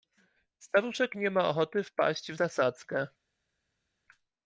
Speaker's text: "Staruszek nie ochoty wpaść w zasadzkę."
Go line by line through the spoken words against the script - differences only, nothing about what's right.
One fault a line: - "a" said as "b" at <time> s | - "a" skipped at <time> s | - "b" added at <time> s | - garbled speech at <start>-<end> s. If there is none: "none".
- "ma" added at 1.3 s